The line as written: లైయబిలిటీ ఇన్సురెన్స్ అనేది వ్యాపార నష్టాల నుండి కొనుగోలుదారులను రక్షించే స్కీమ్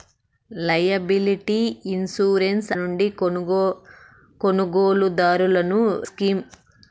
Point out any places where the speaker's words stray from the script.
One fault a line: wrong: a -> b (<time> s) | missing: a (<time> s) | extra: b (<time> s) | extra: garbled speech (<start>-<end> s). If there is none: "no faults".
missing: అనేది వ్యాపార నష్టాల (2.7 s)
missing: రక్షించే (5.8 s)